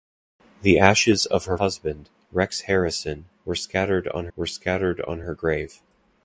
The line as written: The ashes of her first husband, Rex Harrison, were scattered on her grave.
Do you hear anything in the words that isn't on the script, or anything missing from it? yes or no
yes